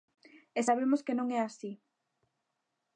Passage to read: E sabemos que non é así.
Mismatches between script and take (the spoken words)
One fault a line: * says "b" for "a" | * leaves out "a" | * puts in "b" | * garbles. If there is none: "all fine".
all fine